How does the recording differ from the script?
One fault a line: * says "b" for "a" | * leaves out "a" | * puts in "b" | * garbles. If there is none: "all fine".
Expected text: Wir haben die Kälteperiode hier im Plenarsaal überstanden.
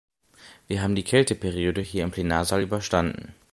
all fine